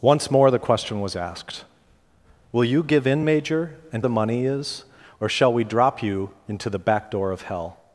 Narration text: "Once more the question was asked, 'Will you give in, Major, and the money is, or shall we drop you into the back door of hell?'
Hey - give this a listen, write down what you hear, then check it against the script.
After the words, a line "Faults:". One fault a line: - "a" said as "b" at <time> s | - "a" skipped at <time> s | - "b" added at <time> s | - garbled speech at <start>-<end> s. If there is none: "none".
"Once more the question was asked, 'Will you give in, Major, and the money is, or shall we drop you into the back door of hell?'
Faults:
none